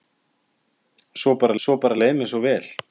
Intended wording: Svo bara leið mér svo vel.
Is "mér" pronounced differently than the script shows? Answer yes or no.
no